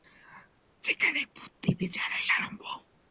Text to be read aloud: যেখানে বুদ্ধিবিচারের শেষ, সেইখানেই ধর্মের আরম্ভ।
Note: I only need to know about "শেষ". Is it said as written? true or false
false